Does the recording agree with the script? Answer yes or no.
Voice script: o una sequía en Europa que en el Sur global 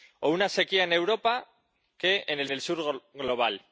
no